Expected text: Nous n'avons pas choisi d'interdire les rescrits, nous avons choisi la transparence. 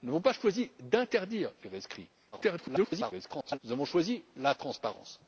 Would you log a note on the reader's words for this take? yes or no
yes